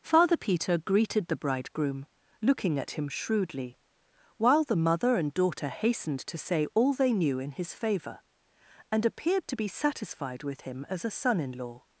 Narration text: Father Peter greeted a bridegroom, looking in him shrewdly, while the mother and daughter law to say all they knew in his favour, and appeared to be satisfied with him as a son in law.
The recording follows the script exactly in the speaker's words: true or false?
false